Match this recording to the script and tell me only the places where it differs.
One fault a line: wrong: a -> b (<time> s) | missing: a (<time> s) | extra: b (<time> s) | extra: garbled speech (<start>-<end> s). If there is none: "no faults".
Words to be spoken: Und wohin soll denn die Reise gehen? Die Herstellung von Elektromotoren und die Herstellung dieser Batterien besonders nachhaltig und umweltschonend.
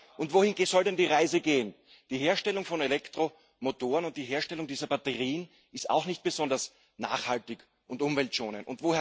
extra: ist auch nicht (5.7 s)